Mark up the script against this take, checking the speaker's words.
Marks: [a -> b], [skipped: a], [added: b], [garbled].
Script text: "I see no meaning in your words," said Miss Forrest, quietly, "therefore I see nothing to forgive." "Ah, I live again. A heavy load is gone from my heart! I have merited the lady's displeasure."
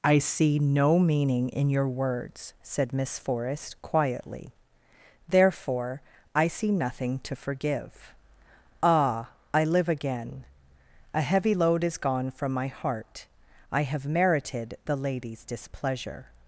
"I see no meaning in your words," said Miss Forrest, quietly, "therefore I see nothing to forgive." "Ah, I live again. A heavy load is gone from my heart! I have merited the lady's displeasure."